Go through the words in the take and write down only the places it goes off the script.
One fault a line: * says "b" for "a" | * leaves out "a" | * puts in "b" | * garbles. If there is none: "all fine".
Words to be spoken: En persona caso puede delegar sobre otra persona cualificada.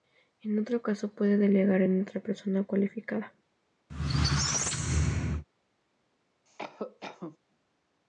* says "otro" for "persona"
* says "en" for "sobre"